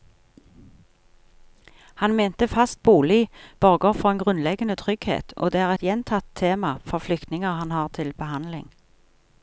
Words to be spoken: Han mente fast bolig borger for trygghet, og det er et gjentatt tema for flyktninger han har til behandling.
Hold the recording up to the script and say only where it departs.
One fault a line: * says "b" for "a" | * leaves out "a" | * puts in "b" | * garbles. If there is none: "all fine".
* puts in "en grunnleggende"